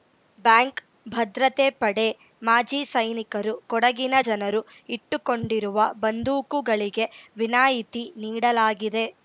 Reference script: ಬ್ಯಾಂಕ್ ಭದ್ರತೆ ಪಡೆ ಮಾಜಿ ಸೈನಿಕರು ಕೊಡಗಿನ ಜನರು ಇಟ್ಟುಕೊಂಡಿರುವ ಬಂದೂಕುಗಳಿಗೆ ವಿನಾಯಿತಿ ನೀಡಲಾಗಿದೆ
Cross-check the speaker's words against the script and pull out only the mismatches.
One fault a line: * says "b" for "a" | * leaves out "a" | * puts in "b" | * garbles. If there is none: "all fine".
all fine